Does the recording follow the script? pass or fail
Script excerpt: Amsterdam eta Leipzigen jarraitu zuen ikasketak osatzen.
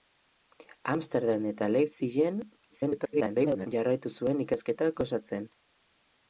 fail